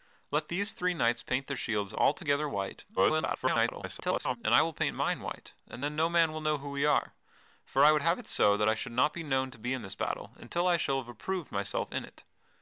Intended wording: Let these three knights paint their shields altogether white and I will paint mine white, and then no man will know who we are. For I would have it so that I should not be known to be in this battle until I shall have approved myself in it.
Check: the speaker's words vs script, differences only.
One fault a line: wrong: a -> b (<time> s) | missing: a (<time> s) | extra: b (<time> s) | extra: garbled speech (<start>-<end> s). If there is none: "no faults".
extra: garbled speech (3.0-4.4 s)